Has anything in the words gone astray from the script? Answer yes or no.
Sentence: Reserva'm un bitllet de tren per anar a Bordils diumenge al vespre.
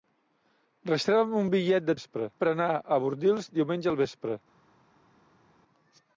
yes